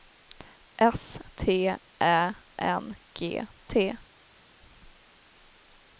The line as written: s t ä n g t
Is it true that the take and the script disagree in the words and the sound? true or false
false